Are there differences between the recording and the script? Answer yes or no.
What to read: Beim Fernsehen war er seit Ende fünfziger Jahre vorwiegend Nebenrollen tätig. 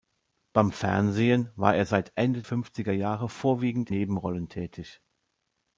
no